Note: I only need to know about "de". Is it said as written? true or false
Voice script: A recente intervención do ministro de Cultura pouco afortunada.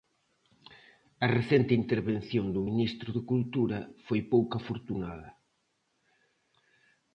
true